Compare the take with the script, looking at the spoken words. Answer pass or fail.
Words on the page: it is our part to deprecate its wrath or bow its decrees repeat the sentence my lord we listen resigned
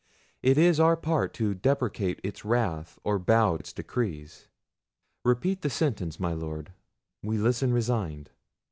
pass